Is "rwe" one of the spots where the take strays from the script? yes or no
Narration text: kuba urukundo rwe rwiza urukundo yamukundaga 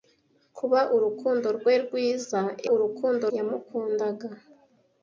no